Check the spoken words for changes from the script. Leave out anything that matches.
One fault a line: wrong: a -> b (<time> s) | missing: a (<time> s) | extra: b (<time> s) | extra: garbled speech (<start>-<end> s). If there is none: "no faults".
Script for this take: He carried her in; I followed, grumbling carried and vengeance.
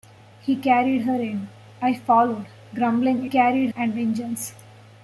no faults